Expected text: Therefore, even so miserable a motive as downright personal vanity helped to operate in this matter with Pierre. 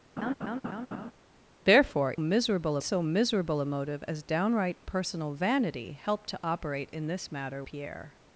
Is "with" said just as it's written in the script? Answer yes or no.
no